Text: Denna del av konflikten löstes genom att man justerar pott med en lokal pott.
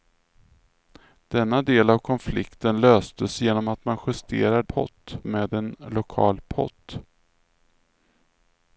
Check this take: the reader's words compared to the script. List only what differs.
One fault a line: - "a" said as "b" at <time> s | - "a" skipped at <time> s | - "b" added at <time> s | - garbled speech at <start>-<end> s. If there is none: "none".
none